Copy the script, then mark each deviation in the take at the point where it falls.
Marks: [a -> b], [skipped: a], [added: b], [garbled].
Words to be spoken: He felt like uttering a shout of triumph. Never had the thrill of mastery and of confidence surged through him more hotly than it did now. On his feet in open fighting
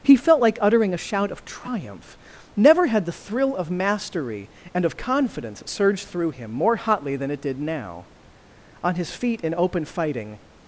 He felt like uttering a shout of triumph. Never had the thrill of mastery and of confidence surged through him more hotly than it did now. On his feet in open fighting